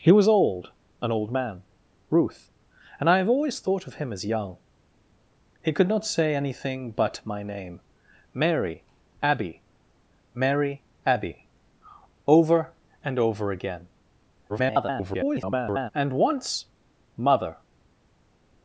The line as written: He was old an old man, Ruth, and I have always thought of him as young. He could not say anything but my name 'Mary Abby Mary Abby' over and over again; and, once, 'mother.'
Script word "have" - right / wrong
right